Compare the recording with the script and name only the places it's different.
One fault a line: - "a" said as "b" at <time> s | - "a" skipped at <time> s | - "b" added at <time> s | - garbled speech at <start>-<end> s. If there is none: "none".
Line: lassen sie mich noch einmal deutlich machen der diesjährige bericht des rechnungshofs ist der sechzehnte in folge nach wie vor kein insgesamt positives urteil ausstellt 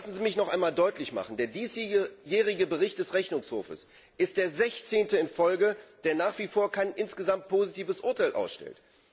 - "der" added at 6.0 s